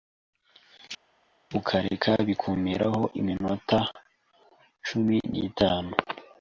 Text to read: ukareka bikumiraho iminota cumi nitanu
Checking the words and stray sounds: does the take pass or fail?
pass